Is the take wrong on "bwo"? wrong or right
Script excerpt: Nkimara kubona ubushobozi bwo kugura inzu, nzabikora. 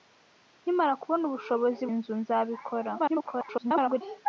wrong